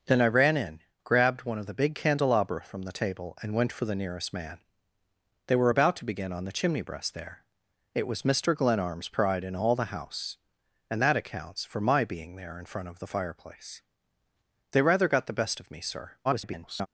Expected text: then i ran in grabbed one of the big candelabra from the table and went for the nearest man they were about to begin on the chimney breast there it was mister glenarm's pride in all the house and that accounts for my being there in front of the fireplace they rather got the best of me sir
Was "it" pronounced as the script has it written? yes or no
yes